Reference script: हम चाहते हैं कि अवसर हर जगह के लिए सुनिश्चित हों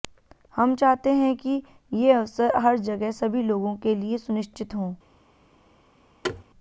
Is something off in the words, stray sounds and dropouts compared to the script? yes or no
yes